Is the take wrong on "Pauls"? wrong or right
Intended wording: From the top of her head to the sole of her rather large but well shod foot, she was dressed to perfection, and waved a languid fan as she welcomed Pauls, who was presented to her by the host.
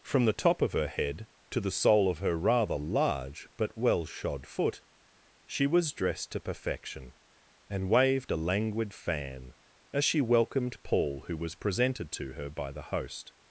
wrong